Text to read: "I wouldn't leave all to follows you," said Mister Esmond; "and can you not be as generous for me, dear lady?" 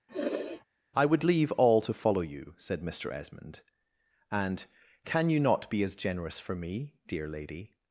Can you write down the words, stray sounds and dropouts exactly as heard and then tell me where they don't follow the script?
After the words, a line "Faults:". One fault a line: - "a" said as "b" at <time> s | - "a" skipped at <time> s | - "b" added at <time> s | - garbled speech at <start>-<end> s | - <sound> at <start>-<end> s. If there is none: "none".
"I would leave all to follow you," said Mister Esmond; "and can you not be as generous for me, dear lady?"
Faults:
- sniff at 0.1-0.6 s
- "wouldn't" said as "would" at 1.1 s
- "follows" said as "follow" at 1.9 s